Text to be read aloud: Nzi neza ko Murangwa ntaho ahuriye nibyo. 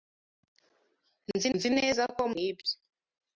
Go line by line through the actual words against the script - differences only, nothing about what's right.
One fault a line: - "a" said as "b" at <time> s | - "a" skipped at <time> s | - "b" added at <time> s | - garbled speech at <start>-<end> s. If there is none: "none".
- "nzi" added at 1.5 s
- "Murangwa ntaho ahuriye" skipped at 2.2 s